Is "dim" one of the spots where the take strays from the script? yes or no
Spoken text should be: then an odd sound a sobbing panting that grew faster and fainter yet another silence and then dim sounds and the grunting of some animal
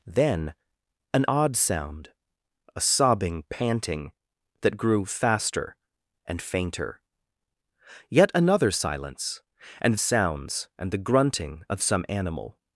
yes